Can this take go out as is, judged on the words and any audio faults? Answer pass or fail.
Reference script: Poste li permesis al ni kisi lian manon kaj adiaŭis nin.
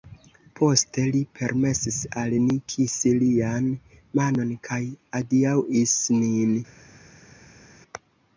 pass